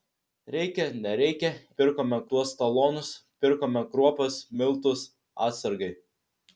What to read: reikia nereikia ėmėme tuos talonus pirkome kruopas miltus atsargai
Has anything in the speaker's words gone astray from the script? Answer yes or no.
yes